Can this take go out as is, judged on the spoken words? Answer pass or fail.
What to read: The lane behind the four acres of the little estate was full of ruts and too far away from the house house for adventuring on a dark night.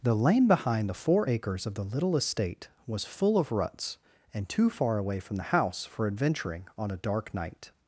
fail